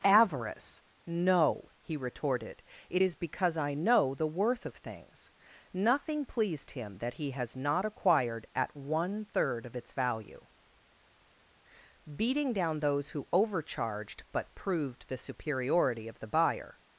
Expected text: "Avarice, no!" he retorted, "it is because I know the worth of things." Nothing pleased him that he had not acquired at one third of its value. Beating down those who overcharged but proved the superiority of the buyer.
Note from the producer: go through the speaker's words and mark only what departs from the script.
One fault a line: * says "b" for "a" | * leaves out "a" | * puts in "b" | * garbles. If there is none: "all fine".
* says "has" for "had"